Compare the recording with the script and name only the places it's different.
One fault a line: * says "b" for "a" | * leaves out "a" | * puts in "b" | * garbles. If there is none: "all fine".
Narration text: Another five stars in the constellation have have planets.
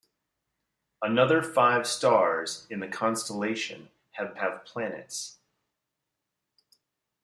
all fine